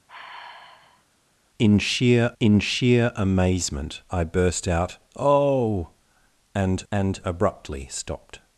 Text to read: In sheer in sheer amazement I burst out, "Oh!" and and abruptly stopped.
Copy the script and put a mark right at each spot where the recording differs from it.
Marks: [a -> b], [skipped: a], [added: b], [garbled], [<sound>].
[sigh] In sheer in sheer amazement I burst out, "Oh!" and and abruptly stopped.